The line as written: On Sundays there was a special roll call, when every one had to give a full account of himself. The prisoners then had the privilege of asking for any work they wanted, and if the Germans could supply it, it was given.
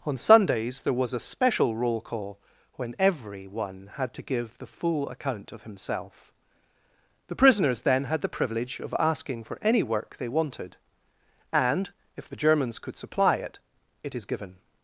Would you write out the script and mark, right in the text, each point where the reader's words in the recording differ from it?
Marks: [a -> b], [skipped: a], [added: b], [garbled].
On Sundays there was a special roll call, when every one had to give [a -> the] full account of himself. The prisoners then had the privilege of asking for any work they wanted, and if the Germans could supply it, it [was -> is] given.